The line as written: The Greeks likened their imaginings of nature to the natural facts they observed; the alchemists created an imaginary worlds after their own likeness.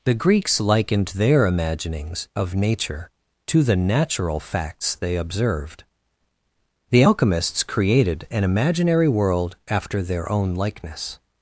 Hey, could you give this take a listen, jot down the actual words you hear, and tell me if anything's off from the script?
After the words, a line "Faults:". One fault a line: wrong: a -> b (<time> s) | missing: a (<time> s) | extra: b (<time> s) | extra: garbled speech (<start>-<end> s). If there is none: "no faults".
The Greeks likened their imaginings of nature to the natural facts they observed; the alchemists created an imaginary world after their own likeness.
Faults:
wrong: worlds -> world (9.1 s)